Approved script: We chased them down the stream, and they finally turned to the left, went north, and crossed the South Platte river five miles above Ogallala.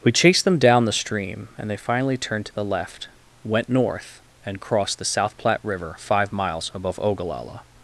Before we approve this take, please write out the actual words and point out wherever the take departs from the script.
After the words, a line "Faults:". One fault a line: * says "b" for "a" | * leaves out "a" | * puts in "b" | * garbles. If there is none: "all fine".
We chased them down the stream, and they finally turned to the left, went north, and crossed the South Platte river five miles above Ogallala.
Faults:
all fine